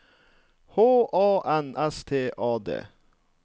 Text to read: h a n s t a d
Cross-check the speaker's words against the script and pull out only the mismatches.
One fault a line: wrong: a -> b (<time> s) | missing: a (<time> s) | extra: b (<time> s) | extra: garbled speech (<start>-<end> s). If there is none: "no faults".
no faults